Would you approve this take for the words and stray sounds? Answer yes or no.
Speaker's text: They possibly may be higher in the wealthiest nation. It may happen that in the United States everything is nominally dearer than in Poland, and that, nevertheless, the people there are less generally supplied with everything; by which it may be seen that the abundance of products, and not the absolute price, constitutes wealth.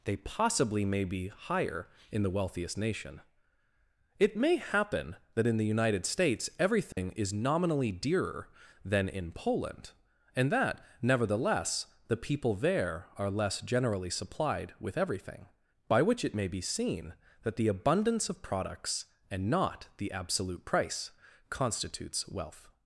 no